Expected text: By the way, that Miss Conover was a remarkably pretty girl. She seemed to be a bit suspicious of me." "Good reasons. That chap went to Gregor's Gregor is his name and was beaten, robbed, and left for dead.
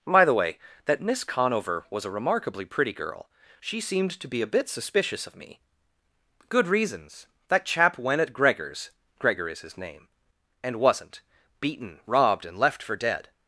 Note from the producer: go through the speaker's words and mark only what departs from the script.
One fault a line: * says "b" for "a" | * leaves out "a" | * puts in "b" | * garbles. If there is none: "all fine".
* says "at" for "to"
* says "wasn't" for "was"